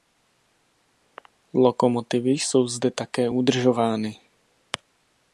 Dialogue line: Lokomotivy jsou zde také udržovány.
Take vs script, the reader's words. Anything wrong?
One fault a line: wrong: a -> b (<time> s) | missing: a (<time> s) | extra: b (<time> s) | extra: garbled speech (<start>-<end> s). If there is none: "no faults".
no faults